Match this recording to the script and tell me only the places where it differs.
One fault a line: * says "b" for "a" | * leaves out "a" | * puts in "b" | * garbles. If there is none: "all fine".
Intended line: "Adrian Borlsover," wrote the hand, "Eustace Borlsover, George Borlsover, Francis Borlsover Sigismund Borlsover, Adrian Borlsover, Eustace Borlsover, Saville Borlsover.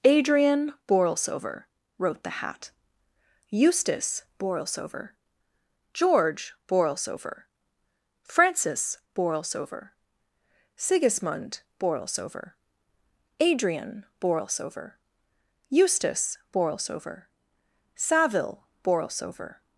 * says "hat" for "hand"